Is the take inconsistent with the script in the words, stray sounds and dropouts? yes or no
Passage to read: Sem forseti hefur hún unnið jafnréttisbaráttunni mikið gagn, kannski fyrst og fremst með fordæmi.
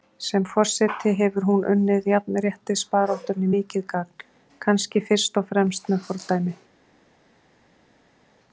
no